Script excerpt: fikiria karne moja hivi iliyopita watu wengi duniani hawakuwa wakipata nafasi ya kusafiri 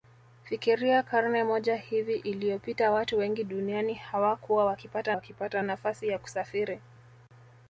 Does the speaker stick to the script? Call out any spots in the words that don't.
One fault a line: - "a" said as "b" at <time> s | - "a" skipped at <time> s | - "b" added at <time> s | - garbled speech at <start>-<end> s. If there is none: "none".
- "wakipata" added at 5.1 s